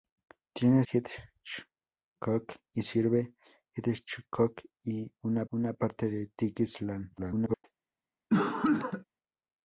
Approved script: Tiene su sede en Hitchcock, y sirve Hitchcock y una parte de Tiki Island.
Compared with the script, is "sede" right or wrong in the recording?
wrong